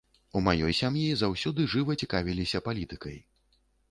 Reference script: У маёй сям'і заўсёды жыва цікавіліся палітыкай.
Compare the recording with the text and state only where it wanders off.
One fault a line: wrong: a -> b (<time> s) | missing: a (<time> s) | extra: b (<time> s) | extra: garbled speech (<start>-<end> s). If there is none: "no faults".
no faults